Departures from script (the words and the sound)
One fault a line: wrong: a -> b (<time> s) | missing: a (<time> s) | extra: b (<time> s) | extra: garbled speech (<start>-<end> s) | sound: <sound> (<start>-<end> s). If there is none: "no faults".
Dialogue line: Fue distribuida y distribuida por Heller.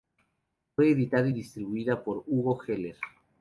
wrong: distribuida -> editada (0.9 s)
extra: Hugo (2.3 s)